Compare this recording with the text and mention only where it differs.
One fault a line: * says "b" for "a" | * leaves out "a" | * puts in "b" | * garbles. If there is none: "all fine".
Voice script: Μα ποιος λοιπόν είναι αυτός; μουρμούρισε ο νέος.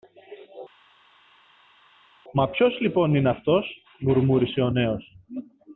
all fine